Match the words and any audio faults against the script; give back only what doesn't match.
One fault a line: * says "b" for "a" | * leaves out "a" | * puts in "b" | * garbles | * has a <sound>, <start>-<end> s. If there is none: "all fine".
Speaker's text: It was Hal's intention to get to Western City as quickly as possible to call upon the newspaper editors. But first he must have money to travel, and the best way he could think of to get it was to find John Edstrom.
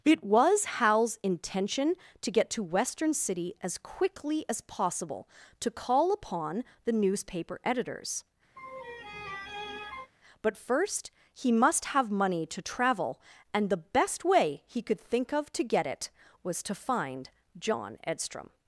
* has a laugh, 8.6-10.1 s